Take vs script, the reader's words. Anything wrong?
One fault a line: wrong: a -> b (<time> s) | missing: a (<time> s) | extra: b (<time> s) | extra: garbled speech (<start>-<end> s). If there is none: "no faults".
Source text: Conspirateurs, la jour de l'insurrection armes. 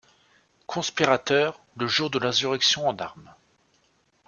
wrong: la -> le (1.8 s)
extra: en (2.9 s)